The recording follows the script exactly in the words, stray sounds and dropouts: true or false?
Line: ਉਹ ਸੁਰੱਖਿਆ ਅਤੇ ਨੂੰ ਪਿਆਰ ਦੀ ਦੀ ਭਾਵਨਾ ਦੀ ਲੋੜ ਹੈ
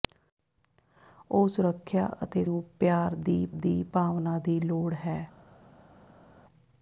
true